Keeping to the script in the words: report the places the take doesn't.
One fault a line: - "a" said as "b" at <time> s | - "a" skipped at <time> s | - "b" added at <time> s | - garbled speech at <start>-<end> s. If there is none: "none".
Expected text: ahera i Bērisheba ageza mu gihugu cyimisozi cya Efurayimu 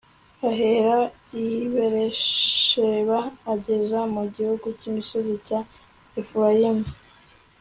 none